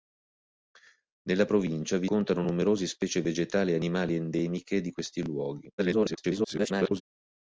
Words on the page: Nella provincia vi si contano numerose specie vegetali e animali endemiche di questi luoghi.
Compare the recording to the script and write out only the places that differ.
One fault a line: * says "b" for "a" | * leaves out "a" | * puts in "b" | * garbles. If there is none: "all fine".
* leaves out "si"
* garbles